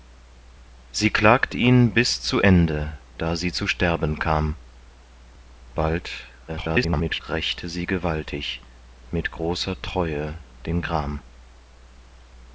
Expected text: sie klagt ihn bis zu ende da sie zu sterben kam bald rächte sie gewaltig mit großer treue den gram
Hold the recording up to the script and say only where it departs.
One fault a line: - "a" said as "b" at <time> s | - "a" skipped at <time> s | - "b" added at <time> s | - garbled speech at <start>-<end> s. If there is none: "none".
- garbled speech at 6.5-7.2 s